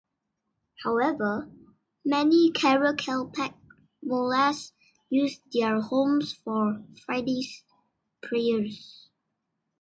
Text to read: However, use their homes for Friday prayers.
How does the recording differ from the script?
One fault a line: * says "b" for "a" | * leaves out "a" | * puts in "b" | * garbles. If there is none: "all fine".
* puts in "many Karakalpak mullahs"